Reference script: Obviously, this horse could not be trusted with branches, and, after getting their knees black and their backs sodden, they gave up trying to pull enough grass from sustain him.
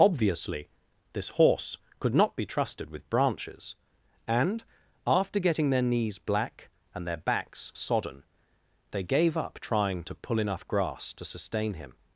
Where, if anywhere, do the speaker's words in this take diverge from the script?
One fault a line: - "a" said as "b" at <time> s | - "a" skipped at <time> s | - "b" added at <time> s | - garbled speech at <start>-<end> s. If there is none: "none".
- "from" said as "to" at 11.1 s